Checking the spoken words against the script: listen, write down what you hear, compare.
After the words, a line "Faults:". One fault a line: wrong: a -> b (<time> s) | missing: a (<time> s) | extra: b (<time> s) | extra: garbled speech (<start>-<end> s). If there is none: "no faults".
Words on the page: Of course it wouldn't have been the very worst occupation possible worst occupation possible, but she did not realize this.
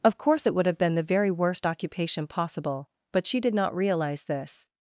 Of course it would have been the very worst occupation possible, but she did not realize this.
Faults:
wrong: wouldn't -> would (0.6 s)
missing: worst occupation possible (2.9 s)